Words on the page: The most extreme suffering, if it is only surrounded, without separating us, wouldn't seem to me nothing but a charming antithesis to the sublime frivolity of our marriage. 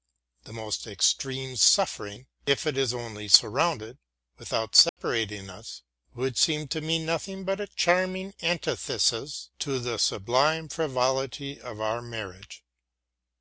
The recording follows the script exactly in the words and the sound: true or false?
false